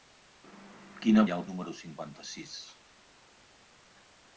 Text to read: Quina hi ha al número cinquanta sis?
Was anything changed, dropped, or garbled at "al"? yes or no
no